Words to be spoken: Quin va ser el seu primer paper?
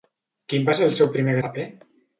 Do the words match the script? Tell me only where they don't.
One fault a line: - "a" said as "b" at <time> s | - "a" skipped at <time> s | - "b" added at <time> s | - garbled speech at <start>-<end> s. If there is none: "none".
none